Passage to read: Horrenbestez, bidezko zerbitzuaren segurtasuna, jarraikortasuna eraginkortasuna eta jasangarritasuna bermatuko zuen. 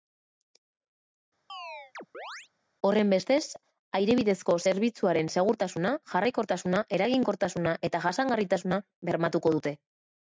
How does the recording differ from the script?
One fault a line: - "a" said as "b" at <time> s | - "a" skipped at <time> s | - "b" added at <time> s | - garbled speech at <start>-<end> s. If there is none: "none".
- "aire" added at 4.0 s
- "zuen" said as "dute" at 9.6 s